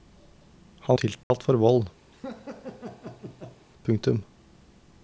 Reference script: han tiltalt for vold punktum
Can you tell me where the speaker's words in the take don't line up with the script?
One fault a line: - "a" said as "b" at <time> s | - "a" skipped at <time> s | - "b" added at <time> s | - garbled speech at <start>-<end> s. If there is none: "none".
none